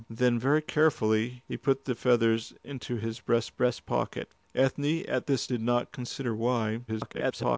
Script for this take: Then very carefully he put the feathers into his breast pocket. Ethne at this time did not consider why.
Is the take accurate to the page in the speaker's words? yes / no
no